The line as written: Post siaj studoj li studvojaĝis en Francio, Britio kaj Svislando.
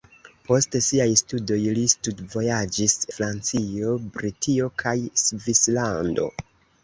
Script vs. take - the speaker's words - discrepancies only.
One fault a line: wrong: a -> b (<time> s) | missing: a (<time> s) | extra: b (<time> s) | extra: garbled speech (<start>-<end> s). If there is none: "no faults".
missing: en (3.0 s)